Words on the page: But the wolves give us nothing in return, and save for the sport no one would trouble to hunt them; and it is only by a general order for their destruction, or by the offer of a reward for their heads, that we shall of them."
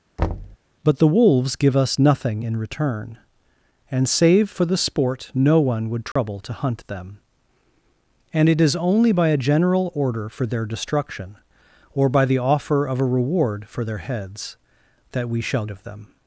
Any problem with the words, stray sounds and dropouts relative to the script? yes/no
yes